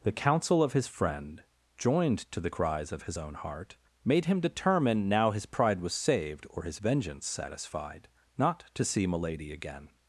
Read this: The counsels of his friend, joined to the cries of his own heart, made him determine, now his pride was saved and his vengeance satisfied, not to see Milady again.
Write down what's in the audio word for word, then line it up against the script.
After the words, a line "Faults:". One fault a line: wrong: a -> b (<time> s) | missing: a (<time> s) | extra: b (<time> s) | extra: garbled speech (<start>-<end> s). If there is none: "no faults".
The counsel of his friend, joined to the cries of his own heart, made him determine, now his pride was saved or his vengeance satisfied, not to see Milady again.
Faults:
wrong: counsels -> counsel (0.1 s)
wrong: and -> or (6.5 s)